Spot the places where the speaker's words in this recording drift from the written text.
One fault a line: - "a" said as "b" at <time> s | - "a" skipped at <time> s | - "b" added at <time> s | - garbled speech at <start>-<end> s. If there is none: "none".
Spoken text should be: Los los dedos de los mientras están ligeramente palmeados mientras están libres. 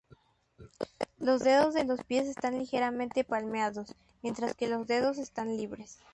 - "los" skipped at 1.4 s
- "mientras" said as "pies" at 2.0 s
- "que los dedos" added at 4.6 s